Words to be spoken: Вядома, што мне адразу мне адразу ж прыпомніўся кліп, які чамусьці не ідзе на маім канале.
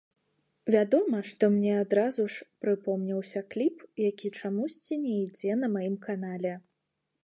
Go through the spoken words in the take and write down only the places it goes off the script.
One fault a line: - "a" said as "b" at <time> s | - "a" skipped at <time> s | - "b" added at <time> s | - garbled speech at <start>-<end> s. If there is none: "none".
- "мне адразу" skipped at 2.2 s